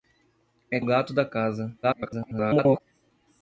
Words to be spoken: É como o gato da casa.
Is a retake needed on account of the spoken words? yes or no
yes